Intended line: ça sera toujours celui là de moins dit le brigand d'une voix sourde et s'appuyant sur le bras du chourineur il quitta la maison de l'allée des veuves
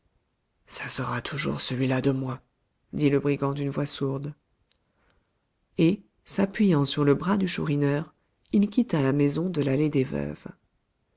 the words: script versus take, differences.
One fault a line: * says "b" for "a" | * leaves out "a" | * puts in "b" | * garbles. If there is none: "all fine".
all fine